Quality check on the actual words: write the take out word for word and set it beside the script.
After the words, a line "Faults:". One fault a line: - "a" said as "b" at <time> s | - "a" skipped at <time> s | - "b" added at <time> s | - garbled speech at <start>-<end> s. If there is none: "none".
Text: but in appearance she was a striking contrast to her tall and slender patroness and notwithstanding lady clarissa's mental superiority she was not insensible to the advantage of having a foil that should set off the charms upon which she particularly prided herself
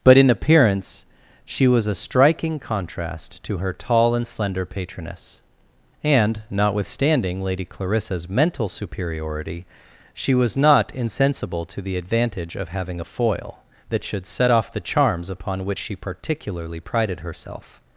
but in appearance she was a striking contrast to her tall and slender patroness and notwithstanding lady clarissa's mental superiority she was not insensible to the advantage of having a foil that should set off the charms upon which she particularly prided herself
Faults:
none